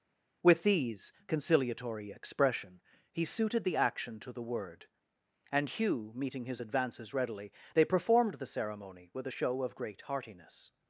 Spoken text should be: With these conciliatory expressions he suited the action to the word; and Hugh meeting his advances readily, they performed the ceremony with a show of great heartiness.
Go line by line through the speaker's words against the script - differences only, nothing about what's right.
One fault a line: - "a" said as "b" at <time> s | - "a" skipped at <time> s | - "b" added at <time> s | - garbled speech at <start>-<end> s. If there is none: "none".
- "expressions" said as "expression" at 2.1 s